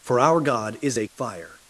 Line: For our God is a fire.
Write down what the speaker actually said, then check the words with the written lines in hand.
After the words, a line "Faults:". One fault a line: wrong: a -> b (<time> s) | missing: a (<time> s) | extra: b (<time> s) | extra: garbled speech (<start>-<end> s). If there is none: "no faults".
For our God is a fire.
Faults:
no faults